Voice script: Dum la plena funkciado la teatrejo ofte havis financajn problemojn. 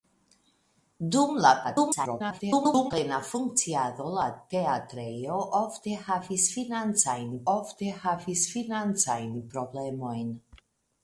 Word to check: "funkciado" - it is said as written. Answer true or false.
true